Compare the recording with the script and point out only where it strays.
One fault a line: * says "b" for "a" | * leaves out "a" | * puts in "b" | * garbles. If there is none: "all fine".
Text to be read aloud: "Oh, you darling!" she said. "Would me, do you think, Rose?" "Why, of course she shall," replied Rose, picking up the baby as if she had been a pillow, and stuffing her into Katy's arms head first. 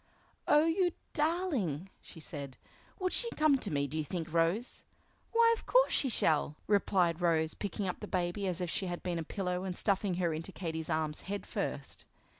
* puts in "she come to"